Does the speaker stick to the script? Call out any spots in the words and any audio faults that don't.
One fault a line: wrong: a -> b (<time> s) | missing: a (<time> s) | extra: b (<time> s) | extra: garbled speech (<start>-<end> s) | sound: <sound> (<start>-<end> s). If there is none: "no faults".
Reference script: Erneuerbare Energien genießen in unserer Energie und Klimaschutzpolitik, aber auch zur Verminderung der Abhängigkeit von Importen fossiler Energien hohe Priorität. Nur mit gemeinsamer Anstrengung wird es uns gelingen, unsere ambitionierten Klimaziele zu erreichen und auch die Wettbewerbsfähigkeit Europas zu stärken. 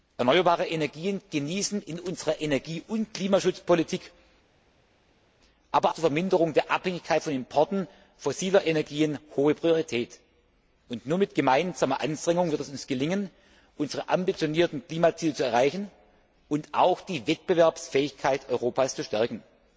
missing: auch (5.9 s)